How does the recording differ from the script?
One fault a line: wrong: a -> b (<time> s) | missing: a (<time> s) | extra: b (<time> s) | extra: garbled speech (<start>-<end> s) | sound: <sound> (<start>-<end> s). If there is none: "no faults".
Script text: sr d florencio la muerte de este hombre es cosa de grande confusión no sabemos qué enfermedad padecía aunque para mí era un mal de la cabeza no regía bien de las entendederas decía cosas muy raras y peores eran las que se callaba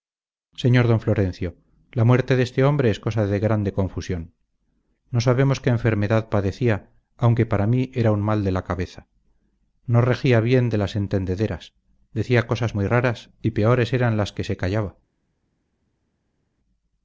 no faults